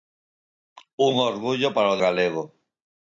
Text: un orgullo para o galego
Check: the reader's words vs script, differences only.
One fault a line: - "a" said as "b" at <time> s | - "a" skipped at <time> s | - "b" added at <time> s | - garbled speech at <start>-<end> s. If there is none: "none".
none